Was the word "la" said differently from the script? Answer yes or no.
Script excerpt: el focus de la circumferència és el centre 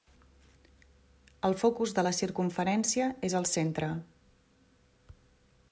no